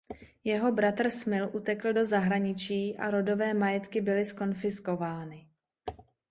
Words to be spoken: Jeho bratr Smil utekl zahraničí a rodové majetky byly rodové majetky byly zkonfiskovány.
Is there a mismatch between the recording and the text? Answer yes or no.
yes